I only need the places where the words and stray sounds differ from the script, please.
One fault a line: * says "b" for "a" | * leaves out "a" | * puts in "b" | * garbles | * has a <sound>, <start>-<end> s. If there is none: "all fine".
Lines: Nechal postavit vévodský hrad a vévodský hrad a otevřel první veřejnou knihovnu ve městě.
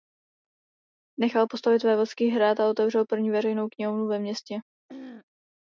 * leaves out "vévodský hrad a"
* has a throat clearing, 4.9-5.3 s